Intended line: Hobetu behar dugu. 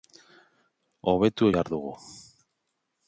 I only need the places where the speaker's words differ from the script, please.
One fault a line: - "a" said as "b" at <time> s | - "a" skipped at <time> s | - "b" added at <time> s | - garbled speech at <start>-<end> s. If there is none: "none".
none